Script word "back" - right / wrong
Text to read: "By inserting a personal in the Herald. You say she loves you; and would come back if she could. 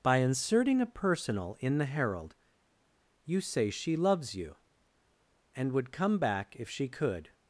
right